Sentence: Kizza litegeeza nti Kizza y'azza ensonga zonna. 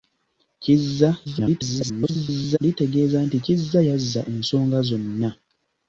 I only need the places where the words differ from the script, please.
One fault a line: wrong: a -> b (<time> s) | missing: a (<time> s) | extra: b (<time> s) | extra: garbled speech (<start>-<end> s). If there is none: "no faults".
extra: garbled speech (1.2-2.6 s)